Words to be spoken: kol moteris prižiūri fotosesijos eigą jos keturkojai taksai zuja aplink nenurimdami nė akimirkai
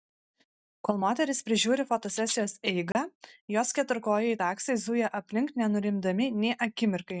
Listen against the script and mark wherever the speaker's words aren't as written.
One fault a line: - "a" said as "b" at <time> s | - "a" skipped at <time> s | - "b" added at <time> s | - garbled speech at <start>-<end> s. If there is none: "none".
none